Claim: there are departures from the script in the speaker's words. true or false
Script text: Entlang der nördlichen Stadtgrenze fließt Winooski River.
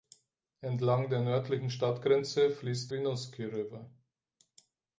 false